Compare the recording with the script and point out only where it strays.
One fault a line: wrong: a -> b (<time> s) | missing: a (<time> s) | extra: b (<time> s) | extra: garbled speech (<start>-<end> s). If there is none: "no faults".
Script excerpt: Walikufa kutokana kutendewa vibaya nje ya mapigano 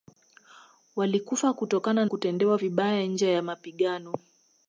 no faults